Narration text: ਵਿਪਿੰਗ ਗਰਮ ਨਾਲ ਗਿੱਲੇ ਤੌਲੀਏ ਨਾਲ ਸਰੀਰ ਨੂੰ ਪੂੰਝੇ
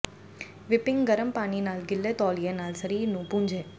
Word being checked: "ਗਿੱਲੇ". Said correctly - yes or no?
yes